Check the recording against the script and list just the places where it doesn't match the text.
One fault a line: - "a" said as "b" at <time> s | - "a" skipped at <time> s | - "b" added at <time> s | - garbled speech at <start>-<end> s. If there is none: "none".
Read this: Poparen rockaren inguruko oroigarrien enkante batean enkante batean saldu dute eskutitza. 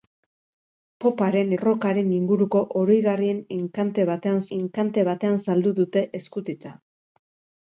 none